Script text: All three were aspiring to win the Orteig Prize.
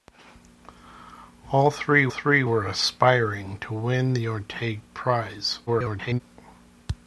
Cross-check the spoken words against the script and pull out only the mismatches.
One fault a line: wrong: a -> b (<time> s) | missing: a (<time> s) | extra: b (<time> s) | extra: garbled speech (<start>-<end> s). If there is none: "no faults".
extra: three (2.1 s)
extra: garbled speech (5.7-6.2 s)